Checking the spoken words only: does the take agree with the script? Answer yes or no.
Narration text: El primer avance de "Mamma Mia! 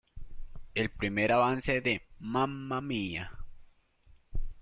yes